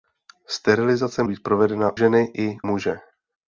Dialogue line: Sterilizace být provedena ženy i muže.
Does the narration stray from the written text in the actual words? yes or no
no